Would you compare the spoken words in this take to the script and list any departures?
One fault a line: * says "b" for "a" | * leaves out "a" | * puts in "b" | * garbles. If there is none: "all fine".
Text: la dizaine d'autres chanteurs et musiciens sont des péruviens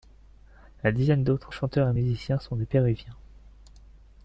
all fine